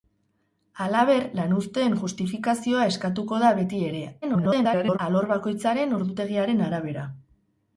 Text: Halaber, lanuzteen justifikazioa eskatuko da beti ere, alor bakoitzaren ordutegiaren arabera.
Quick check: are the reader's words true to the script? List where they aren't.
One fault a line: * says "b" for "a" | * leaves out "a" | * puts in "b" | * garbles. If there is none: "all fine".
* garbles